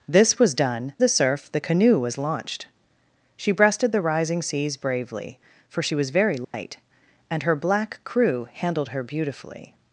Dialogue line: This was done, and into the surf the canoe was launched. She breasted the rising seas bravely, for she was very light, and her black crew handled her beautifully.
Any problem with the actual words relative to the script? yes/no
yes